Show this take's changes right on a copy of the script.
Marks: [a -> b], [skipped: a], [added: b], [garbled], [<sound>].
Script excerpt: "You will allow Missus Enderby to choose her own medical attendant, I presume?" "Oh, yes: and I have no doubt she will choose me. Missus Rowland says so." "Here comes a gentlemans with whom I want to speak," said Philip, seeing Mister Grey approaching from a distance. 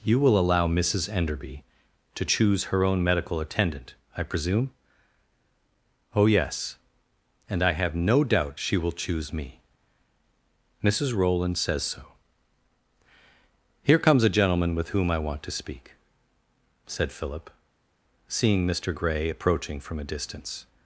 "You will allow Missus Enderby to choose her own medical attendant, I presume?" "Oh, yes: and I have no doubt she will choose me. Missus Rowland says so." "Here comes a [gentlemans -> gentleman] with whom I want to speak," said Philip, seeing Mister Grey approaching from a distance.